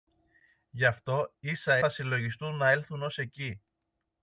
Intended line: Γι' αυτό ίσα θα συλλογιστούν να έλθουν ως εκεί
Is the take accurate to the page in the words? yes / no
yes